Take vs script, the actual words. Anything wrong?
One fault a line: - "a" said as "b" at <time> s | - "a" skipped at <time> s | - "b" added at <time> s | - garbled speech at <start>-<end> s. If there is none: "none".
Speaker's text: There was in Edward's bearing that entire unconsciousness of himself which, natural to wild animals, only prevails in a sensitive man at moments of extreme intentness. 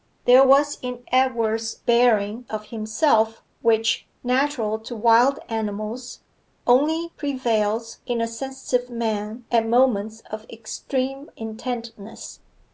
- "that entire unconsciousness" skipped at 2.5 s